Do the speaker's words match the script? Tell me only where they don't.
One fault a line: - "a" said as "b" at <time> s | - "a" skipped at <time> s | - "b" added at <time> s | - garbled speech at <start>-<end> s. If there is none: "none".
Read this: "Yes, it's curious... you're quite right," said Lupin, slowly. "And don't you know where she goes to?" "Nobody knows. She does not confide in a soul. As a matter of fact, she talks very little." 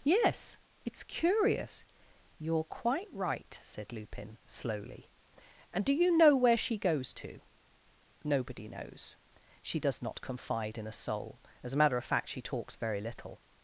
- "don't" said as "do" at 5.8 s